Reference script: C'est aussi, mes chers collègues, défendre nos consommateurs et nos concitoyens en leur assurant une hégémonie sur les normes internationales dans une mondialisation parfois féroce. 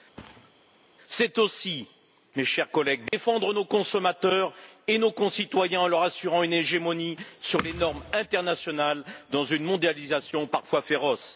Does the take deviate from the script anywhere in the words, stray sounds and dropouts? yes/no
yes